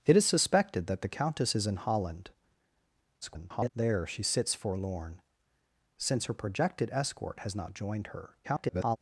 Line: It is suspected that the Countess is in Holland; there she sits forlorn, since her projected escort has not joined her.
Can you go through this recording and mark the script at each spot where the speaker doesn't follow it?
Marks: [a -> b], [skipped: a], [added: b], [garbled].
It is suspected that the Countess is in Holland; [garbled] there she sits forlorn, since her projected escort has not joined her. [garbled]